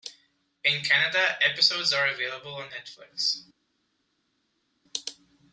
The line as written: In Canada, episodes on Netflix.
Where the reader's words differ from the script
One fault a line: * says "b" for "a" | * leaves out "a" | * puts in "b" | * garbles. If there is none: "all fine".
* puts in "are available"